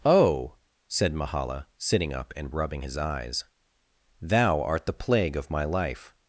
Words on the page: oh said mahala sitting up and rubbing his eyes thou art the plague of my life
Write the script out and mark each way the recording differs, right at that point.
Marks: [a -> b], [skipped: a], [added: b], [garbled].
oh said mahala sitting up and rubbing his eyes thou art the plague of my life